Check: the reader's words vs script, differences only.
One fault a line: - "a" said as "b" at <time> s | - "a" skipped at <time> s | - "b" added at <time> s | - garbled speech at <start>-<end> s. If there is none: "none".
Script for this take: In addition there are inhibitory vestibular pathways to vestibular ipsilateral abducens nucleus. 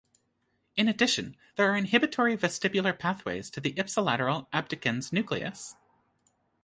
- "vestibular" said as "the" at 3.6 s